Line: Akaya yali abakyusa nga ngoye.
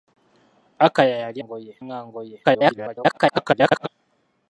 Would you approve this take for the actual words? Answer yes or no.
no